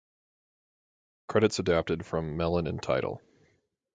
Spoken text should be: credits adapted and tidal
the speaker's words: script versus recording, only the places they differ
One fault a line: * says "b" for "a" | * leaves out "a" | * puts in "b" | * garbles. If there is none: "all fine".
* puts in "from melon"